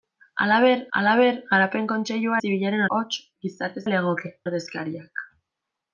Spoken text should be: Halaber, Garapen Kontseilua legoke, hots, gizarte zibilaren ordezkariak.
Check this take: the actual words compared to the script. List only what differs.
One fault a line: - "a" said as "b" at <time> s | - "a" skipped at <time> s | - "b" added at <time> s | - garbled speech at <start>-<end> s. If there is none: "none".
- "halaber" added at 1.0 s
- "legoke" said as "zibilaren" at 2.4 s
- "zibilaren" said as "legoke" at 3.9 s